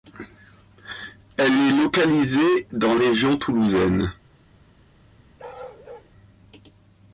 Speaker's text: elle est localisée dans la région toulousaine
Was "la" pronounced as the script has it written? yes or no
no